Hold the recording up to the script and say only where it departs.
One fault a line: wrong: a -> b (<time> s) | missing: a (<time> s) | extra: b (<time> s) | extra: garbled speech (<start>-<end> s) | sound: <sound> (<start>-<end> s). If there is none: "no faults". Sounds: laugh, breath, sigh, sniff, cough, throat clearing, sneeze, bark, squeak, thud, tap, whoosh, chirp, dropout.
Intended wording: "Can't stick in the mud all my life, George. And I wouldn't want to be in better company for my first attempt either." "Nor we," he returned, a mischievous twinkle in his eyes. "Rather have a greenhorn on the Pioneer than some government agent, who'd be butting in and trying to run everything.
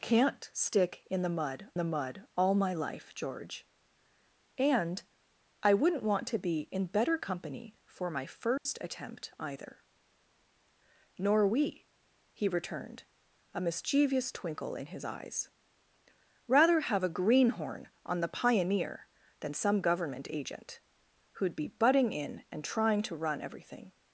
extra: the mud (1.8 s)
sound: dropout (8.6-8.7 s)